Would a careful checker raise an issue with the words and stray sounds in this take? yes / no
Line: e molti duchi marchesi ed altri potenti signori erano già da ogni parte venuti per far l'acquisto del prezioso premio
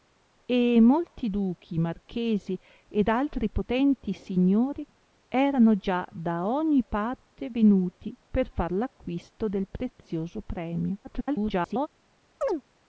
yes